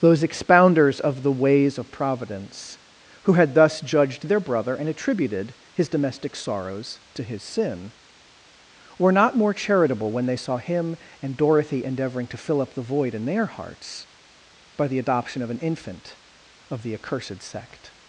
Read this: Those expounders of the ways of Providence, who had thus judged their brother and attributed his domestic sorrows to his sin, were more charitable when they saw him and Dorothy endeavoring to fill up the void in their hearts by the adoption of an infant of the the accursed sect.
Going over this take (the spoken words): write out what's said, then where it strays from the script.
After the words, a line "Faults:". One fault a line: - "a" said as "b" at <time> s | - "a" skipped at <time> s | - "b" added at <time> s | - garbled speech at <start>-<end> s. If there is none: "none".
Those expounders of the ways of Providence, who had thus judged their brother and attributed his domestic sorrows to his sin, were not more charitable when they saw him and Dorothy endeavoring to fill up the void in their hearts by the adoption of an infant of the accursed sect.
Faults:
- "not" added at 9.1 s
- "the" skipped at 16.9 s